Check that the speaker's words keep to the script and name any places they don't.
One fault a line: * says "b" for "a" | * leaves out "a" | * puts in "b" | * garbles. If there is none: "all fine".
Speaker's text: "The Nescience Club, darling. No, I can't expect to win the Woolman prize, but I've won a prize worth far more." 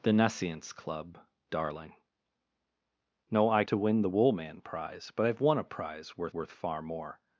* leaves out "can't expect"
* puts in "worth"